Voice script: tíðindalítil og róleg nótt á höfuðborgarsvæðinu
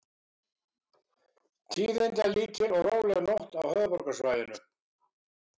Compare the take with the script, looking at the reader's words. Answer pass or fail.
pass